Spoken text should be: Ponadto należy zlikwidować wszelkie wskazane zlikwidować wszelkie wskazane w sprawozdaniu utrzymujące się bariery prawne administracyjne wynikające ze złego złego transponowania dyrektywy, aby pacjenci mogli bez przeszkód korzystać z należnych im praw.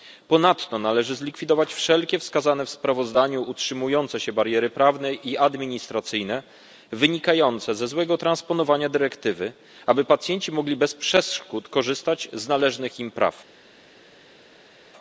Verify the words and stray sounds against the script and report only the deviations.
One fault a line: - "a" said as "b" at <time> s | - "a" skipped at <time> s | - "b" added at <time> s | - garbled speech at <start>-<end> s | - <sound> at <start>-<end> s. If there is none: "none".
- "zlikwidować wszelkie wskazane" skipped at 2.6 s
- "i" added at 5.1 s
- "złego" skipped at 8.2 s